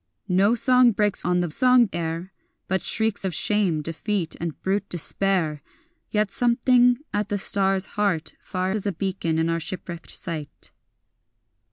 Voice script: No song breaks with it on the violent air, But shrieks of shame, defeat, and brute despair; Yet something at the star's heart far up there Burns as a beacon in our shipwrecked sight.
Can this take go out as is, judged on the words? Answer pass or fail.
fail